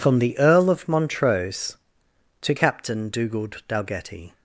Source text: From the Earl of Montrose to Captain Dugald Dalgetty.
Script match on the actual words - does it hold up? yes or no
yes